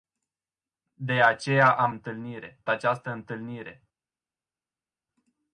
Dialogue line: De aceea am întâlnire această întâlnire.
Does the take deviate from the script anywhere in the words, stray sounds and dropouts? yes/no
no